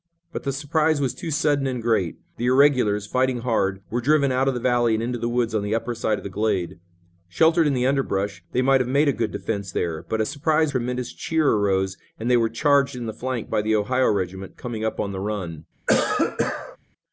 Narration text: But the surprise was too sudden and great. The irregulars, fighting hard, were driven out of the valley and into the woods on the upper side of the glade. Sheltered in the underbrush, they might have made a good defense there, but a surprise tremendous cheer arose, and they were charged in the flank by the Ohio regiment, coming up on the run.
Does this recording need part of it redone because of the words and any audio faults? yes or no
yes